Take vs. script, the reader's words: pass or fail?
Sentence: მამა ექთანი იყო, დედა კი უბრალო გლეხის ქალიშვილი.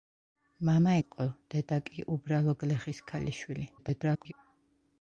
fail